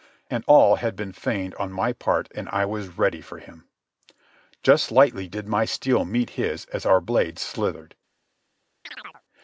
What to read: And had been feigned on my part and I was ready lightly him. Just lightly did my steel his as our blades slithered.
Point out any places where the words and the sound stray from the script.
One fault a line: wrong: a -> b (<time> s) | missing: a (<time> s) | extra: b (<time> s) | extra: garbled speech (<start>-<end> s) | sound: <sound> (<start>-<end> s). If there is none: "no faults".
extra: all (0.5 s)
wrong: lightly -> for (3.2 s)
extra: meet (6.1 s)
sound: chirp (8.8-9.2 s)